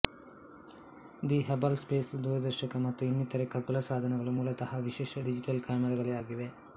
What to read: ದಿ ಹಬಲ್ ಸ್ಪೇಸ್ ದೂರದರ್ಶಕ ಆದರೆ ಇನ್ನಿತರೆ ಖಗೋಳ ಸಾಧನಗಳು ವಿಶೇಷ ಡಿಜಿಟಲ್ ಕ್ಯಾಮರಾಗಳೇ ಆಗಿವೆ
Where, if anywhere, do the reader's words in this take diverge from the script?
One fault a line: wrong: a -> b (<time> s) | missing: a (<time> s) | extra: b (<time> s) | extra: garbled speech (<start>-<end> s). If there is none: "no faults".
wrong: ಆದರೆ -> ಮತ್ತು (2.9 s)
extra: ಮೂಲತಃ (4.4 s)